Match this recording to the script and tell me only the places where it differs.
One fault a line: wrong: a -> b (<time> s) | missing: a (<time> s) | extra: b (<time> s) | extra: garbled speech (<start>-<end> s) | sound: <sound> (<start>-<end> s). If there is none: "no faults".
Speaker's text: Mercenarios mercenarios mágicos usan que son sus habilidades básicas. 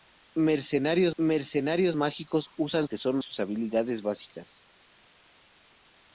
no faults